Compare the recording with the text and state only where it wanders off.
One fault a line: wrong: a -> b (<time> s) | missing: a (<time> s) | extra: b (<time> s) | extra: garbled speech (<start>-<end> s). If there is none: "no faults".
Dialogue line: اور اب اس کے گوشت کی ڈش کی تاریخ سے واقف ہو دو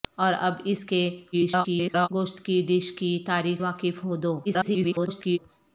extra: garbled speech (1.3-2.1 s)
missing: سے (3.6 s)
extra: garbled speech (4.4-5.4 s)